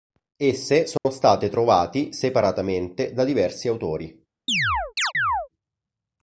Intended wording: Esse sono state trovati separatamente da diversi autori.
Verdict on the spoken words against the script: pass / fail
pass